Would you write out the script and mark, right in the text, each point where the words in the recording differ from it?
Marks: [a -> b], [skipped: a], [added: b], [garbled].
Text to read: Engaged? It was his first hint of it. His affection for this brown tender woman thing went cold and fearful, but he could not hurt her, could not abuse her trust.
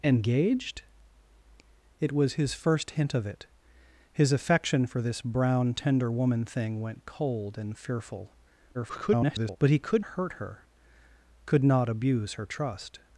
Engaged? It was his first hint of it. His affection for this brown tender woman thing went cold and fearful, [garbled] but he could [skipped: not] hurt her, could not abuse her trust.